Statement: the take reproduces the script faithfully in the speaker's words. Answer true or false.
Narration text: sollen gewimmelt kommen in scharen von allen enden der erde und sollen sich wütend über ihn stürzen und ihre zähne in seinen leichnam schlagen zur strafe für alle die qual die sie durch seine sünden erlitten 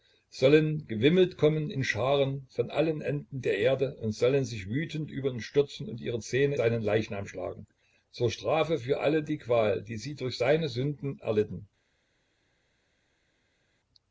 false